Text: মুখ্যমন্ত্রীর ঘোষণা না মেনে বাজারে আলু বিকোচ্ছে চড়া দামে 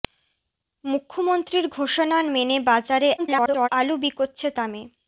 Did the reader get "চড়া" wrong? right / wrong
wrong